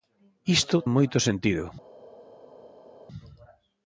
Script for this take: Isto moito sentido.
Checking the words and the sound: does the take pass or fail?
pass